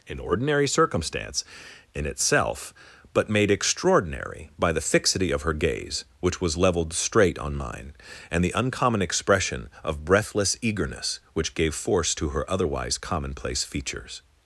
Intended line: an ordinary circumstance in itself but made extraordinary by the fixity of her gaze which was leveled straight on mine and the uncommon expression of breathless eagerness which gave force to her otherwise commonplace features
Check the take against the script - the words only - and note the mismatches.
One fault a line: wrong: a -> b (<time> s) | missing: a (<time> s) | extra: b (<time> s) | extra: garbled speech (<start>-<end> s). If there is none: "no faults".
no faults